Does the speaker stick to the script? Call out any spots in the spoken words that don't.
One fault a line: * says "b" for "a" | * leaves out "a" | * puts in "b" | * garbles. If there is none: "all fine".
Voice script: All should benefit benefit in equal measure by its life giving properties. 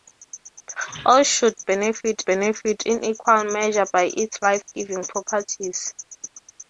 all fine